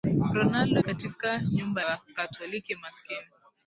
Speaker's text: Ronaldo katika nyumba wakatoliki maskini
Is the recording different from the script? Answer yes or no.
no